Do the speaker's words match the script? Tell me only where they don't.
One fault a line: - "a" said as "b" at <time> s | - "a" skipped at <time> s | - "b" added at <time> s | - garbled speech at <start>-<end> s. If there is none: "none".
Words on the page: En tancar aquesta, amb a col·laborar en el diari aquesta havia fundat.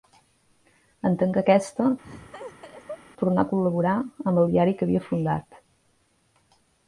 - "amb" said as "tornà" at 3.2 s
- "en" said as "amb" at 4.0 s
- "aquesta" said as "que" at 4.8 s